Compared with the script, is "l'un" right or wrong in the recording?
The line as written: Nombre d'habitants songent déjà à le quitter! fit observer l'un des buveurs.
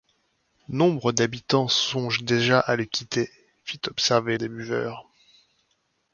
wrong